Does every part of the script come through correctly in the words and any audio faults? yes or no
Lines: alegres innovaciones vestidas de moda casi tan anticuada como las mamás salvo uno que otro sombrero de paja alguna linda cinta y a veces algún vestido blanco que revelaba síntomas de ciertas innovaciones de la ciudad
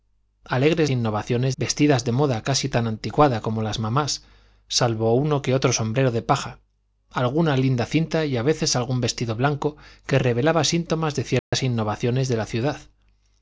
no